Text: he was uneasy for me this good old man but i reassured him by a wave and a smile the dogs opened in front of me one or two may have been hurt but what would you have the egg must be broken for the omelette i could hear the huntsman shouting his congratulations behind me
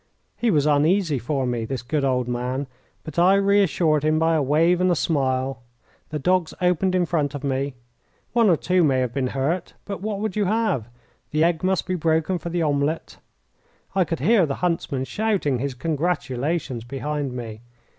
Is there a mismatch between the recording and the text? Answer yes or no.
no